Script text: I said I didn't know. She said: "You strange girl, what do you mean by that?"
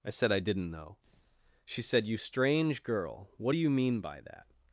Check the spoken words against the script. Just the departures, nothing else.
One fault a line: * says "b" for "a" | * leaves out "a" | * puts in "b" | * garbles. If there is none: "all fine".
all fine